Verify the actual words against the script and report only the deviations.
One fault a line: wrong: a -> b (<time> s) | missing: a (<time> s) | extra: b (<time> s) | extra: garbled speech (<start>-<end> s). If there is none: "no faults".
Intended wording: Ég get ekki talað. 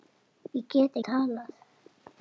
missing: ekki (1.0 s)